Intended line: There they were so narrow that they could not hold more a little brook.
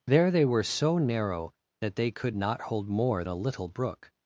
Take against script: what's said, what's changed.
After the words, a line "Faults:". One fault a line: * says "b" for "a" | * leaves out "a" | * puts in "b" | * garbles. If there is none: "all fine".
There they were so narrow that they could not hold more a little brook.
Faults:
all fine